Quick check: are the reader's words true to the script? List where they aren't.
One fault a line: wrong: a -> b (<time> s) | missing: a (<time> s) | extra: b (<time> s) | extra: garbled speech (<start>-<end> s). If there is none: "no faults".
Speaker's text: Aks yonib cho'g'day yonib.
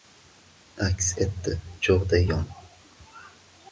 wrong: yonib -> etdi (1.2 s)